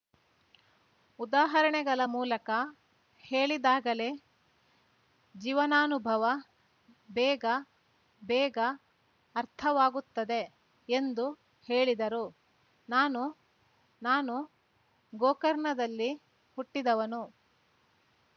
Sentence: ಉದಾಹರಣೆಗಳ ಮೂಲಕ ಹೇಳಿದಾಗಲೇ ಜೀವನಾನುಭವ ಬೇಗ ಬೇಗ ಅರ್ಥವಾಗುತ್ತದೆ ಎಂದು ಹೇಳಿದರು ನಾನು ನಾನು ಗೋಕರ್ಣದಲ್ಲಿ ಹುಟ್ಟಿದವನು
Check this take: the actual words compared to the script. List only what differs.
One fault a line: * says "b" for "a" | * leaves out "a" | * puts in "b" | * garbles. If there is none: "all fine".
all fine